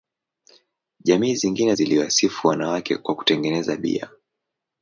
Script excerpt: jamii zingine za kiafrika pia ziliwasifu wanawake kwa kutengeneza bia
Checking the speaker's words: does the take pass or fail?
fail